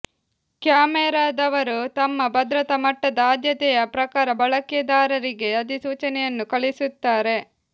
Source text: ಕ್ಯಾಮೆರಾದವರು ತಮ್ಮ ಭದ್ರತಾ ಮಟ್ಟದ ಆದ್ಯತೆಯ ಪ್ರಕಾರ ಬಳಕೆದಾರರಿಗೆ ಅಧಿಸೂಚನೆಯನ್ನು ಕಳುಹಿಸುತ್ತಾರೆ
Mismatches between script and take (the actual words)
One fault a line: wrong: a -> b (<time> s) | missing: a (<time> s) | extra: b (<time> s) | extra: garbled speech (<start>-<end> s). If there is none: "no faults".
no faults